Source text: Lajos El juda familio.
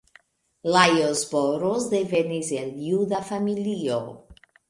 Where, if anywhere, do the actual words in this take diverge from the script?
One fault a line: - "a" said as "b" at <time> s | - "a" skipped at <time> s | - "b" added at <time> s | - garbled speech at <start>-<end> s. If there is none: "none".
- "Boros devenis" added at 1.3 s